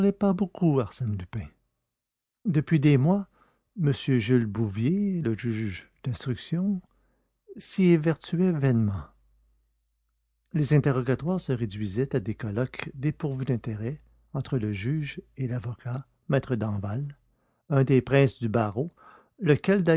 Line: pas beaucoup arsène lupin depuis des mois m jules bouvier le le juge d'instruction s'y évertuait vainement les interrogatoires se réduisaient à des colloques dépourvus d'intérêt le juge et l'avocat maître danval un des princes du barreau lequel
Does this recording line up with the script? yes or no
no